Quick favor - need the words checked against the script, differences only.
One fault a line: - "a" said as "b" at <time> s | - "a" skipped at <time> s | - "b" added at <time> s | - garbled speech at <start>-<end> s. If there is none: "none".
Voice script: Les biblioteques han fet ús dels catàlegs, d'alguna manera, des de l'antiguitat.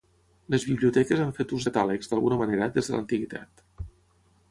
- "dels" skipped at 1.7 s